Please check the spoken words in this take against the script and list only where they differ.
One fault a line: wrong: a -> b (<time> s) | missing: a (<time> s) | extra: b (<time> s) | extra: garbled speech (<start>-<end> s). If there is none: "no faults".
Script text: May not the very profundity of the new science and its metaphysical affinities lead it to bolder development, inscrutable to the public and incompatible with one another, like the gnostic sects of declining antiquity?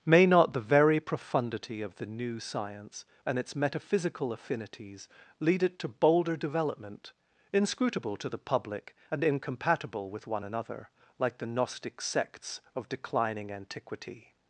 no faults